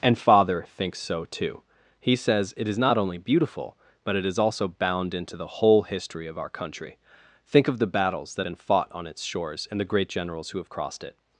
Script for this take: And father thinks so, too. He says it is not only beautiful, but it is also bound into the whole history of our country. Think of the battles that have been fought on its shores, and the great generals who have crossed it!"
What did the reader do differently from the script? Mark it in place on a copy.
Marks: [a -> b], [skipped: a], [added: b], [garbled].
And father thinks so, too. He says it is not only beautiful, but it is also bound into the whole history of our country. Think of the battles that [skipped: have] been fought on its shores, and the great generals who have crossed it!"